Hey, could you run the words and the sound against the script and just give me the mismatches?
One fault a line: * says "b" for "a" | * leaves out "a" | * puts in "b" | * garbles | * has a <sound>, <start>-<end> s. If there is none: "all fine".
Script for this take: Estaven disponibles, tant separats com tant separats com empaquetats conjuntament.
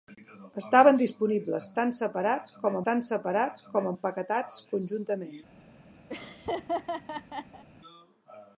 * has a laugh, 6.1-7.6 s